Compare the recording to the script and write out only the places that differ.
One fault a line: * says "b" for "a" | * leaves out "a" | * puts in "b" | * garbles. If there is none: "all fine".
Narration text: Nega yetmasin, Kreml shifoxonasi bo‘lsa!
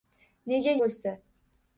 * leaves out "yetmasin Kreml shifoxonasi"